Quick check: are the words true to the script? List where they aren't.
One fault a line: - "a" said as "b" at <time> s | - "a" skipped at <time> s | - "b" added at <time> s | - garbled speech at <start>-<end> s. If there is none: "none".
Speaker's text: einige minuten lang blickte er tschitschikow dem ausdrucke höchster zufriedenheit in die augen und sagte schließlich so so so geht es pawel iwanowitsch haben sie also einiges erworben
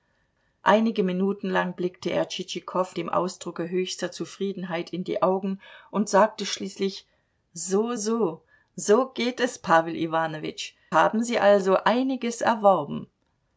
none